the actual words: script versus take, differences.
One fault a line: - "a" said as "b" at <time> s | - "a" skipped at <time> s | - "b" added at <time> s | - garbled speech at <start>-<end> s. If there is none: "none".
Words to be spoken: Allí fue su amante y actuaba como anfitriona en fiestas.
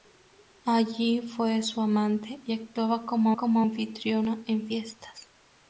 - "como" added at 3.4 s